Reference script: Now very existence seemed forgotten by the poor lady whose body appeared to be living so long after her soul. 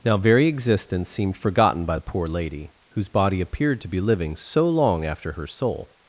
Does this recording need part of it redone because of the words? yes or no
no